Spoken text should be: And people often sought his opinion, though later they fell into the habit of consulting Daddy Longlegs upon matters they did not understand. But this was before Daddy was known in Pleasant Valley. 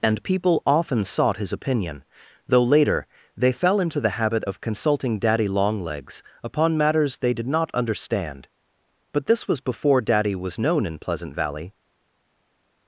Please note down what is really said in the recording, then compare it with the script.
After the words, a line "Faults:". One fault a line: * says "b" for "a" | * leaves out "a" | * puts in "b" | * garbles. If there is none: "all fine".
And people often sought his opinion, though later they fell into the habit of consulting Daddy Longlegs upon matters they did not understand. But this was before Daddy was known in Pleasant Valley.
Faults:
all fine